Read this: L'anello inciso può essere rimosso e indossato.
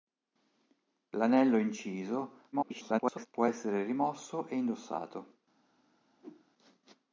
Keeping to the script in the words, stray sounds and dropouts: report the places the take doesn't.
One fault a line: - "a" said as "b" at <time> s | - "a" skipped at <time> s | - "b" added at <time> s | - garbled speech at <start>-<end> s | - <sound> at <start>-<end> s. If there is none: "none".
- garbled speech at 2.5-3.3 s
- whoosh at 6.2-6.5 s